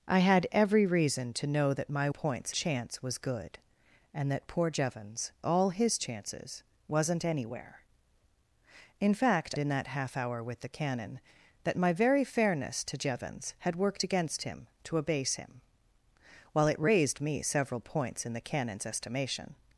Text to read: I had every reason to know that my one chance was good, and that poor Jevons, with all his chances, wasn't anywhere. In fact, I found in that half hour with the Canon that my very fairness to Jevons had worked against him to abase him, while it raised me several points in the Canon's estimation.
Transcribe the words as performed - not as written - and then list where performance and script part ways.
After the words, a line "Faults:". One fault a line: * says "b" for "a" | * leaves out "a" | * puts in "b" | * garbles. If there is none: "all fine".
I had every reason to know that my points chance was good, and that poor Jevons, all his chances, wasn't anywhere. In fact, in that half hour with the Canon that my very fairness to Jevons had worked against him to abase him, while it raised me several points in the Canon's estimation.
Faults:
* says "points" for "one"
* leaves out "with"
* leaves out "I found"